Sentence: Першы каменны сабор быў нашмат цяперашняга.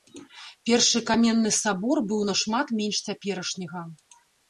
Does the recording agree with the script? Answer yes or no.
no